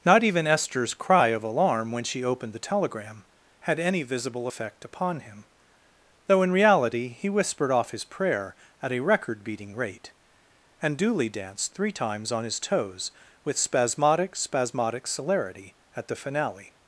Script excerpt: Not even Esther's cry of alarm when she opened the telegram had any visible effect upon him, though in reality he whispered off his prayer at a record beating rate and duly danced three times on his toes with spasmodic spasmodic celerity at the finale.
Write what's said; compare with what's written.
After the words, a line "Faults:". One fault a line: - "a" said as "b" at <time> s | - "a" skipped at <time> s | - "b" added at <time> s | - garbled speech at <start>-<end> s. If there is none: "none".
Not even Esther's cry of alarm when she opened the telegram had any visible effect upon him, though in reality he whispered off his prayer at a record beating rate and duly danced three times on his toes with spasmodic spasmodic celerity at the finale.
Faults:
none